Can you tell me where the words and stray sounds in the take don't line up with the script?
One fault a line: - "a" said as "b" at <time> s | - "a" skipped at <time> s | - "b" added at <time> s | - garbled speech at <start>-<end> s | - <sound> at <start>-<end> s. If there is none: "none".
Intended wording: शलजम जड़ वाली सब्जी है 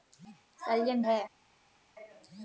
- "जड़ वाली सब्जी" skipped at 1.0 s